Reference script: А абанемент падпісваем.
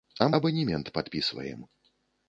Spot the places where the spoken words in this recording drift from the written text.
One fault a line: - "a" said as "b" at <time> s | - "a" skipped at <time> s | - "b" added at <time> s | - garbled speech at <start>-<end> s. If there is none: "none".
none